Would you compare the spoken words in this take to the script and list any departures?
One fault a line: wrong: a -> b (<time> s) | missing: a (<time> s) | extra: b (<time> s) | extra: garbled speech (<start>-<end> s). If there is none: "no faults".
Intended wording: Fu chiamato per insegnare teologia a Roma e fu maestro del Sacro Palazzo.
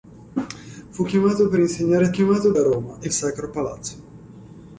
wrong: teologia -> chiamato (2.1 s)
missing: fu maestro del (3.1 s)